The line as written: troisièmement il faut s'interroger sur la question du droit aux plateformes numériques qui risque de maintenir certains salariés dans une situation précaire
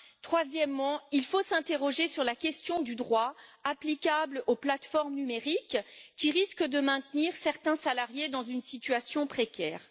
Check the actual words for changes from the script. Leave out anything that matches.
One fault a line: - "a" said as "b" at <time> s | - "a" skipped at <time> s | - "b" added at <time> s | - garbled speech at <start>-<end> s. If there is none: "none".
- "applicable" added at 3.6 s